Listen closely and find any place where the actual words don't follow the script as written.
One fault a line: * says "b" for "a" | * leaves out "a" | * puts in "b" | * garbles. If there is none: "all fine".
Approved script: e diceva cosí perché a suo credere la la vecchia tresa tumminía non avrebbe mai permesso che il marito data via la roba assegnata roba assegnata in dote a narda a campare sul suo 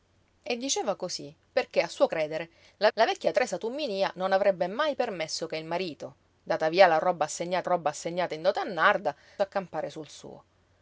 all fine